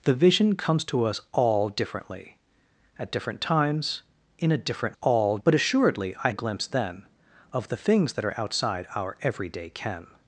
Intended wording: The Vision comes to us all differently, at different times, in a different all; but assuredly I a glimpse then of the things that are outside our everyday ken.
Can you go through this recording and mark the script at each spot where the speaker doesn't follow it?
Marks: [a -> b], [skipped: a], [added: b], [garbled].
The Vision comes to us all differently, at different times, in a different all; but assuredly I a glimpse then of the things that are outside our everyday ken.